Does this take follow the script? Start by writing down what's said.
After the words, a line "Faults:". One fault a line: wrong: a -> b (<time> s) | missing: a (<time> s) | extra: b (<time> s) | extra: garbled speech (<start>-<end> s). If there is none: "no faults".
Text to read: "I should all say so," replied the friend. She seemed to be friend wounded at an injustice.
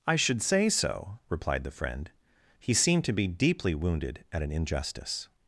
"I should say so," replied the friend. He seemed to be deeply wounded at an injustice.
Faults:
missing: all (0.4 s)
wrong: She -> He (2.6 s)
wrong: friend -> deeply (3.3 s)